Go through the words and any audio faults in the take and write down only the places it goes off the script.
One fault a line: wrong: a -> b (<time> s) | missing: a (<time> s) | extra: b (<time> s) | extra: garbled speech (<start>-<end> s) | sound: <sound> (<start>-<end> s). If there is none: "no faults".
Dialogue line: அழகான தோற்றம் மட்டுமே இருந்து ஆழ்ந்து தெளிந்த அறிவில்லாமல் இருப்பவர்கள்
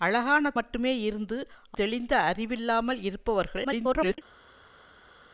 missing: தோற்றம் (0.5 s)
missing: ஆழ்ந்து (1.4 s)
extra: garbled speech (3.6-4.2 s)